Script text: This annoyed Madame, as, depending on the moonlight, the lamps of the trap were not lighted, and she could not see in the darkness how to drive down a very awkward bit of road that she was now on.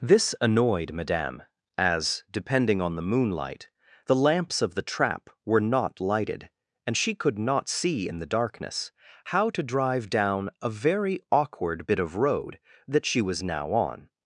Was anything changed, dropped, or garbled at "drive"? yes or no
no